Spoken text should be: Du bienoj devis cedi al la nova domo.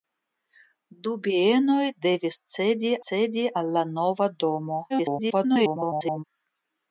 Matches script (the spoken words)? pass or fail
fail